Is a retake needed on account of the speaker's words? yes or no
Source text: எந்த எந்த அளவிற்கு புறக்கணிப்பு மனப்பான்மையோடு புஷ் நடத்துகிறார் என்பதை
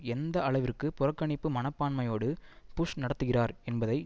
yes